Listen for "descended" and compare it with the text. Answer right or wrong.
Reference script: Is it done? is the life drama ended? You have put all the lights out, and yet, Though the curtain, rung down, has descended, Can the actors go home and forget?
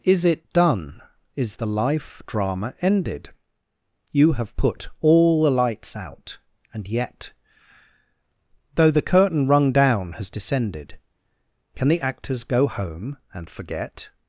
right